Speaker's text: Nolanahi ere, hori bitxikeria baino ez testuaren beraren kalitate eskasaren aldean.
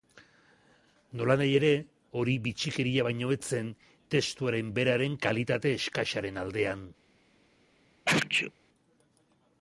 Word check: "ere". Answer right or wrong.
right